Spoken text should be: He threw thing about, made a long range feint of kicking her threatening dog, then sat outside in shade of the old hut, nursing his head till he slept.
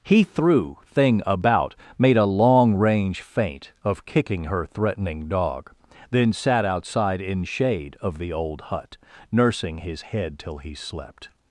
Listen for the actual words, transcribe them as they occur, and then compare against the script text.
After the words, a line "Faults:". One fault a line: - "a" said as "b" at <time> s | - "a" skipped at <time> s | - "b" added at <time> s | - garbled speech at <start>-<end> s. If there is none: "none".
He threw thing about, made a long range feint of kicking her threatening dog, then sat outside in shade of the old hut, nursing his head till he slept.
Faults:
none